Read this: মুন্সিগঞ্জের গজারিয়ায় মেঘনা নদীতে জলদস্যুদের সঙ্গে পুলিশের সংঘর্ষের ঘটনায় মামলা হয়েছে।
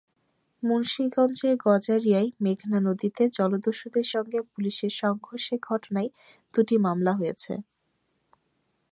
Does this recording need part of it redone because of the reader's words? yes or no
yes